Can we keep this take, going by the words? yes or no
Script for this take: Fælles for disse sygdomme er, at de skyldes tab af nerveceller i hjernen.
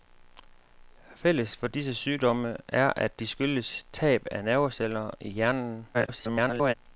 no